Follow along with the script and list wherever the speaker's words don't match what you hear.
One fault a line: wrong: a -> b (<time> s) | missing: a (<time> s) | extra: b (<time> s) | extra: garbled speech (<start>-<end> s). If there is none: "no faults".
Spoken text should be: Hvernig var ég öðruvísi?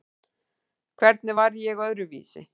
no faults